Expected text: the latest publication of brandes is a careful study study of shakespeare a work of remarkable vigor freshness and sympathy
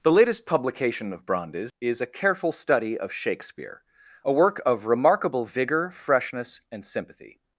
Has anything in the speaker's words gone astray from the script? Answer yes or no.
yes